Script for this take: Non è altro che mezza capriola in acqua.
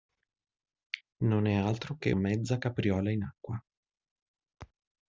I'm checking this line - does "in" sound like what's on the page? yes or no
yes